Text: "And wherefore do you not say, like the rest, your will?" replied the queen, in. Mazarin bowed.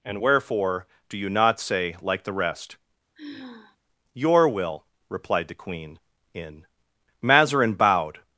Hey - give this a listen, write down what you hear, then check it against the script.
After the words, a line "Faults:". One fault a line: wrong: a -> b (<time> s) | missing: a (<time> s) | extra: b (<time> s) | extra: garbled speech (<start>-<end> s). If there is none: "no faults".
"And wherefore do you not say, like the rest, your will?" replied the queen, in. Mazarin bowed.
Faults:
no faults